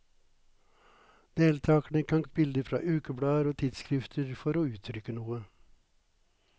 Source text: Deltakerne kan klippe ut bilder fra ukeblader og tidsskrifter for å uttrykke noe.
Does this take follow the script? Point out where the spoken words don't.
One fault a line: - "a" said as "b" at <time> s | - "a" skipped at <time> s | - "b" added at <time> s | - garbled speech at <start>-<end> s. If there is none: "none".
- "klippe" skipped at 2.2 s